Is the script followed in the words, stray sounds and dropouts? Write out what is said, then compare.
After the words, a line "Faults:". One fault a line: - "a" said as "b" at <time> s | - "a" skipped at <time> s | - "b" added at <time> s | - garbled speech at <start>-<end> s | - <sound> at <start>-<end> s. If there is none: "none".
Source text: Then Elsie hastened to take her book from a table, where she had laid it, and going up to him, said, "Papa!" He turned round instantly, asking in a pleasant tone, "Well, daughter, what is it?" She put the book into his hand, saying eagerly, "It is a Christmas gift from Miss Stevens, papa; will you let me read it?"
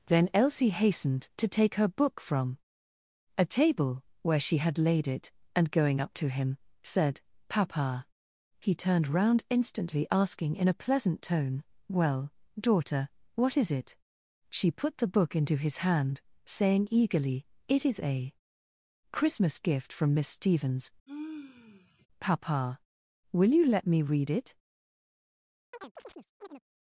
Then Elsie hastened to take her book from a table, where she had laid it, and going up to him, said, "Papa!" He turned round instantly, asking in a pleasant tone, "Well, daughter, what is it?" She put the book into his hand, saying eagerly, "It is a Christmas gift from Miss Stevens, papa; will you let me read it?"
Faults:
- sigh at 21.1-22.1 s
- chirp at 25.7-26.6 s